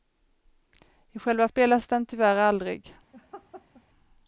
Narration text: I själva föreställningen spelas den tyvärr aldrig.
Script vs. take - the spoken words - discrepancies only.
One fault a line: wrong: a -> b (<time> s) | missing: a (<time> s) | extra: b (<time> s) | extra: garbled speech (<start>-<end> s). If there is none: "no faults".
missing: föreställningen (1.5 s)